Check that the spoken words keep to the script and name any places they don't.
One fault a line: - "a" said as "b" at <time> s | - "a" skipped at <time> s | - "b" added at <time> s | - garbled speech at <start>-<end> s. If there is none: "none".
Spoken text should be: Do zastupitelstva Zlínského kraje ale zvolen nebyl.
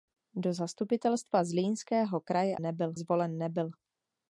- "ale" said as "nebyl" at 2.6 s